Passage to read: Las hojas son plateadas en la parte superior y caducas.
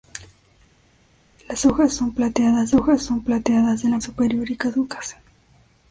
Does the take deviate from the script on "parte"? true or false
true